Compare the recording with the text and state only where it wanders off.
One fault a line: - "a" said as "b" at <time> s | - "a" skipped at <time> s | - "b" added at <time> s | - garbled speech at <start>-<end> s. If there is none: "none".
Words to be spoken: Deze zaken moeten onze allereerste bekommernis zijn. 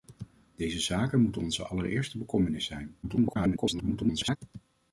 - garbled speech at 3.0-4.4 s